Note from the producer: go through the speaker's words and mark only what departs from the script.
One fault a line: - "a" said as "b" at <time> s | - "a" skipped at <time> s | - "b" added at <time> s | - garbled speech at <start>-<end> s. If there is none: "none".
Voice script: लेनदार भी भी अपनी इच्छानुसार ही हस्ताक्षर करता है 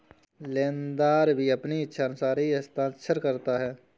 - "भी" skipped at 1.5 s